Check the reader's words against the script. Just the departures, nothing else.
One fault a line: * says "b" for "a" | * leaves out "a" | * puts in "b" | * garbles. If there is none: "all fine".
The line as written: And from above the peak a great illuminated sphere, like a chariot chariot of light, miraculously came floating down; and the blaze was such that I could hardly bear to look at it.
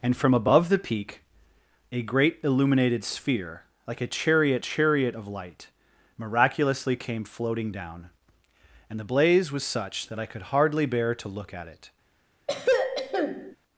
all fine